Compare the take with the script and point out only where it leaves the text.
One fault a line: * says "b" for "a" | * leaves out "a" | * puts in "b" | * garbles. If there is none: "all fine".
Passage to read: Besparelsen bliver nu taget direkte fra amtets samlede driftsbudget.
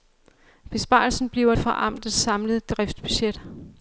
* leaves out "nu taget direkte"